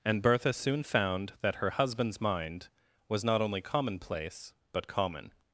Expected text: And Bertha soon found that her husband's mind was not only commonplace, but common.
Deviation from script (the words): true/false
false